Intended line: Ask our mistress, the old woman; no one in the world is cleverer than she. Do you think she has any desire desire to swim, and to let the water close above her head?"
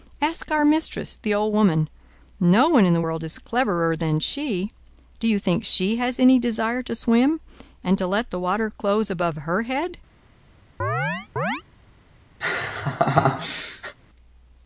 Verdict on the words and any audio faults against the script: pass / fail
fail